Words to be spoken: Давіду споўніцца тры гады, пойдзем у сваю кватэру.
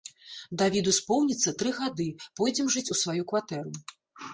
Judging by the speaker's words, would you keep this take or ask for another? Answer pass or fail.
fail